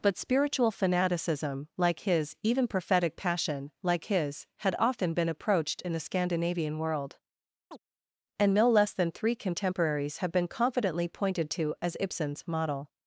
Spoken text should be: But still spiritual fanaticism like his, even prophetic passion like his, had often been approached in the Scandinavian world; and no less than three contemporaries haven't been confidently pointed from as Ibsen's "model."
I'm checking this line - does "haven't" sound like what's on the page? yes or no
no